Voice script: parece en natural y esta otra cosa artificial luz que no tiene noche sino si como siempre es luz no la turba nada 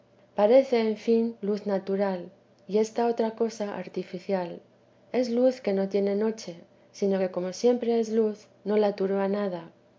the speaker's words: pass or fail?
fail